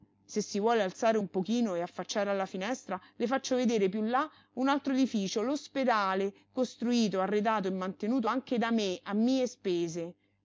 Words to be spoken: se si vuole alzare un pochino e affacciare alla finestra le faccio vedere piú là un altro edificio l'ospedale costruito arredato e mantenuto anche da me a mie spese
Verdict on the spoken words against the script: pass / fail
pass